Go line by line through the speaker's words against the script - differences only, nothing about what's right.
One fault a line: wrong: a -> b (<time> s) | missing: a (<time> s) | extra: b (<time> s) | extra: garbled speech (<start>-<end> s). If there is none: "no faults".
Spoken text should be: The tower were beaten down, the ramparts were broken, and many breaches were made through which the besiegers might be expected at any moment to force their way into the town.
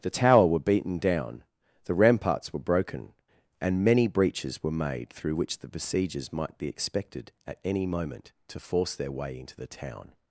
no faults